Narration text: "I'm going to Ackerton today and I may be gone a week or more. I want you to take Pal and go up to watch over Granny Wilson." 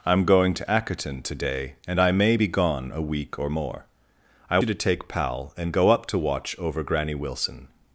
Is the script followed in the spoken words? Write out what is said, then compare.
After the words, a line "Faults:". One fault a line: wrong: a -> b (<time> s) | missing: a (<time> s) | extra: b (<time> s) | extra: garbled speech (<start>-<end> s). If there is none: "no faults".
"I'm going to Ackerton today and I may be gone a week or more. I you to take Pal and go up to watch over Granny Wilson."
Faults:
missing: want (4.6 s)